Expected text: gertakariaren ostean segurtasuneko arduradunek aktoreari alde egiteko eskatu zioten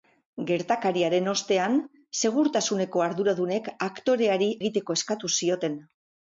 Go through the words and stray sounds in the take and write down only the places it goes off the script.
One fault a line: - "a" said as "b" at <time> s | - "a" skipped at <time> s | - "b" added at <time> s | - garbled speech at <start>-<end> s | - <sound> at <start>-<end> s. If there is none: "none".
- "alde" skipped at 4.5 s